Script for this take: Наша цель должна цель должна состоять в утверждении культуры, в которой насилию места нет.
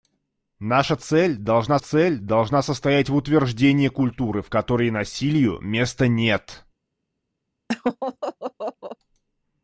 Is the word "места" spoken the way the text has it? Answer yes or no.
yes